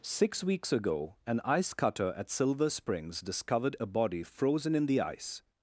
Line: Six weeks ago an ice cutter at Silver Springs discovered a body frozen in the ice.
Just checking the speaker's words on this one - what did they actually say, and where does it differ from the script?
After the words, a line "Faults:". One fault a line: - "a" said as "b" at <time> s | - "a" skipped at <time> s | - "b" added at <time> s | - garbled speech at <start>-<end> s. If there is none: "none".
Six weeks ago an ice cutter at Silver Springs discovered a body frozen in the ice.
Faults:
none